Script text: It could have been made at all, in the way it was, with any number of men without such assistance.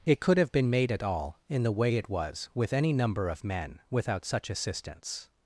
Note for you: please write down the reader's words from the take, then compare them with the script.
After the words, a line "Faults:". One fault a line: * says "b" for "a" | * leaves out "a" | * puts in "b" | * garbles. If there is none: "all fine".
It could have been made at all, in the way it was, with any number of men without such assistance.
Faults:
all fine